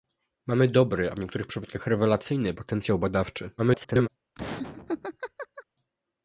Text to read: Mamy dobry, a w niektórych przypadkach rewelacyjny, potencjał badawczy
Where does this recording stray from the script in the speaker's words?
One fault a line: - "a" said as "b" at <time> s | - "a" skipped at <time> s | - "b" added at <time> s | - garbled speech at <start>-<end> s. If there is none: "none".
- garbled speech at 3.6-4.1 s